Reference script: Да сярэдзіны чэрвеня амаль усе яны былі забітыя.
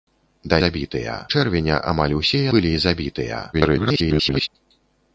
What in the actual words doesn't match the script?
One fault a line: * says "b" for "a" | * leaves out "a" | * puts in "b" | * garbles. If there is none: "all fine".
* says "забітыя" for "сярэдзіны"
* leaves out "яны"
* garbles